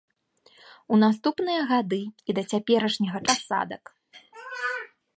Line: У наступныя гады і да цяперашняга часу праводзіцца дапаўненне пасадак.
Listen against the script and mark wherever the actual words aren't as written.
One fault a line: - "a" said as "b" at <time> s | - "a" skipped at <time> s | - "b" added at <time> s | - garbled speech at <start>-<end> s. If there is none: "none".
- "часу праводзіцца дапаўненне" skipped at 3.2 s